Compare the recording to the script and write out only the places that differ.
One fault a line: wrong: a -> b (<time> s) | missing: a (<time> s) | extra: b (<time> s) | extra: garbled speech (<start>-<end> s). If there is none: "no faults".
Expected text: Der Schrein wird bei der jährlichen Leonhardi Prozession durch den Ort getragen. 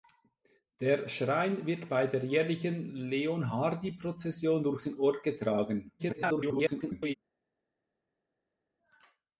extra: garbled speech (6.0-7.1 s)